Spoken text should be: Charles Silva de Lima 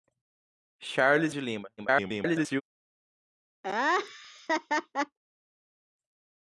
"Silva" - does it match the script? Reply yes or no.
no